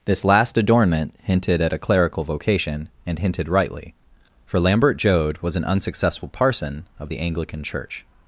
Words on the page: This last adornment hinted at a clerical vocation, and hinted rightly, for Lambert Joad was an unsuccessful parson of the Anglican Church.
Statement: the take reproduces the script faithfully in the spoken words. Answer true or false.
true